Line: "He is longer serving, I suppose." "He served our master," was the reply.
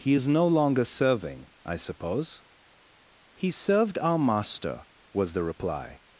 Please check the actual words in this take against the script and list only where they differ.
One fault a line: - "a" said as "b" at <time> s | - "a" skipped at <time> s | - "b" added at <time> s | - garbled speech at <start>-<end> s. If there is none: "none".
- "no" added at 0.3 s